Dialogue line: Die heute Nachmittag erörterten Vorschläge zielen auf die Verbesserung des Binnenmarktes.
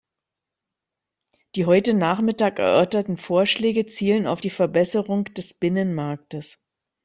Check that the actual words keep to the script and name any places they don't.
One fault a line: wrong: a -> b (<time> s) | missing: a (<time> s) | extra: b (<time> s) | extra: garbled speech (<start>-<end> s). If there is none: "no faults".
no faults